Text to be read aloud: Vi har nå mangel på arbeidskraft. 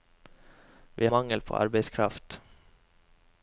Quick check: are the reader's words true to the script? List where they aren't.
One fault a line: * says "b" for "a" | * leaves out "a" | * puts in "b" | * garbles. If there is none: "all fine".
* leaves out "har nå"